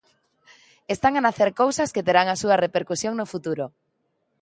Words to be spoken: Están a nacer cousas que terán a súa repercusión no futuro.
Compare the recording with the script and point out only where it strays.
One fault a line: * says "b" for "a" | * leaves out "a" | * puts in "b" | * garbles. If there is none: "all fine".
all fine